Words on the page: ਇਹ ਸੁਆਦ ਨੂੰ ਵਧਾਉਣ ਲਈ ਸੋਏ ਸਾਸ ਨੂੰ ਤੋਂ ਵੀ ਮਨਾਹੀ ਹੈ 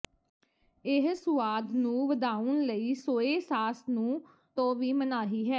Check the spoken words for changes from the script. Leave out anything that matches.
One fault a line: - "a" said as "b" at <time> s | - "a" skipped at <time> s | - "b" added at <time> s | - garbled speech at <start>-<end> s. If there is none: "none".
none